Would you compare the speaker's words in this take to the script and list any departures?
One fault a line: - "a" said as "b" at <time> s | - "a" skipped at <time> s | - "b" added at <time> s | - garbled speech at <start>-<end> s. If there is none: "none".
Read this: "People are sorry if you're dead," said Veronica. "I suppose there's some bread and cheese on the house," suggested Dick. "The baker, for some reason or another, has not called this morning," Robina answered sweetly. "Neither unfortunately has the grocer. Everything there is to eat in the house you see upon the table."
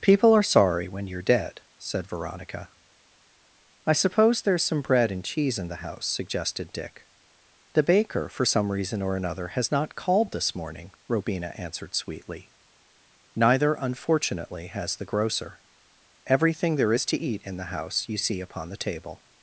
- "if" said as "when" at 0.9 s
- "on" said as "in" at 5.6 s